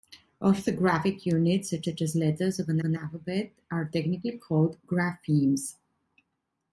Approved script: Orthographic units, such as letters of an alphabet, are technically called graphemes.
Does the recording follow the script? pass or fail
fail